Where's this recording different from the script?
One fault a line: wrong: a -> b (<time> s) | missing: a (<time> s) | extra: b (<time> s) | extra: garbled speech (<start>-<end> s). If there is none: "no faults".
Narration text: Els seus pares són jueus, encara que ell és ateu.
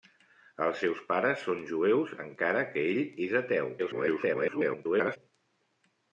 extra: garbled speech (3.8-5.2 s)